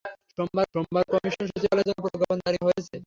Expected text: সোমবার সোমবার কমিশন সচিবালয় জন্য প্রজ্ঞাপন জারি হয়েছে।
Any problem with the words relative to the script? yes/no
no